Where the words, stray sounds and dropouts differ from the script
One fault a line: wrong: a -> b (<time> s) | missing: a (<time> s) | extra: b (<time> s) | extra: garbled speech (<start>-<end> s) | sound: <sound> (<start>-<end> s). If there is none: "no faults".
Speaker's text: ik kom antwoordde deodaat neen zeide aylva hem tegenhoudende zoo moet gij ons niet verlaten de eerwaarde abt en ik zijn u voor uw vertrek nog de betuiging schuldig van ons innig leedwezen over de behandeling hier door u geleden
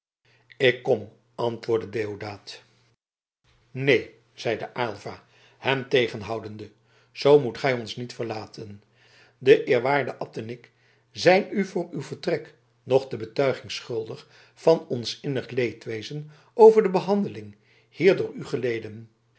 no faults